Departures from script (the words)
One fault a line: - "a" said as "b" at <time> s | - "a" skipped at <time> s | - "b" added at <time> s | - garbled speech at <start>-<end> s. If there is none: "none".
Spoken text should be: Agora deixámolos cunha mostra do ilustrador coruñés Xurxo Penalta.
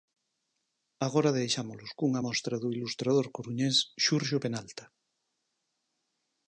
none